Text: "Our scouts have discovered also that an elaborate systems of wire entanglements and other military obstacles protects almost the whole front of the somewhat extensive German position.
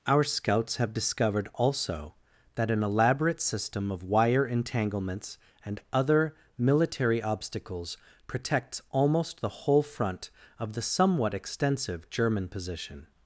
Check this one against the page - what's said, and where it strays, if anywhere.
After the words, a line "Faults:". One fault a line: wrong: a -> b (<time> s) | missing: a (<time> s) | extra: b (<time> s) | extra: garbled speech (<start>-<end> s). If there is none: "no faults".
"Our scouts have discovered also that an elaborate system of wire entanglements and other military obstacles protects almost the whole front of the somewhat extensive German position.
Faults:
wrong: systems -> system (3.4 s)